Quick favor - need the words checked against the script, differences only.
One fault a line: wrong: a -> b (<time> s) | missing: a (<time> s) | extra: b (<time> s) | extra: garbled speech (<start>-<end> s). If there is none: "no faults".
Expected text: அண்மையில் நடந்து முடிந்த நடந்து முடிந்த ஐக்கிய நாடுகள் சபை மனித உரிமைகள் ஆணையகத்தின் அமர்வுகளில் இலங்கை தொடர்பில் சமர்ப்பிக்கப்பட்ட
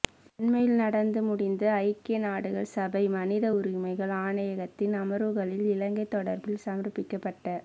missing: நடந்து முடிந்த (1.6 s)